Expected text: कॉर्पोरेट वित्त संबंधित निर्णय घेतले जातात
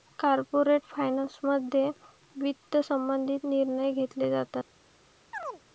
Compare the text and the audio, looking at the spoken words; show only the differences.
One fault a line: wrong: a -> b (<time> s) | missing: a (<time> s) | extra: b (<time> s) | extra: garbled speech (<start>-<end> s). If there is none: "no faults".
extra: फायनान्समध्ये (0.9 s)